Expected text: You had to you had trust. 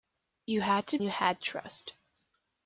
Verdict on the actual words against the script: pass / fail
pass